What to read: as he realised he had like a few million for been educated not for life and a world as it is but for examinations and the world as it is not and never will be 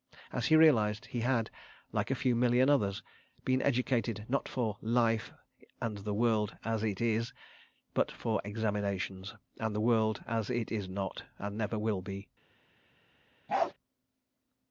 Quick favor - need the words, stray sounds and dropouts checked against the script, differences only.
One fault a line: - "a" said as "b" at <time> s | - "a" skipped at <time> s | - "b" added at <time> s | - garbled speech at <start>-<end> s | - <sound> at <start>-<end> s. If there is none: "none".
- "for" said as "others" at 2.7 s
- "a" said as "the" at 6.0 s
- bark at 13.5-13.7 s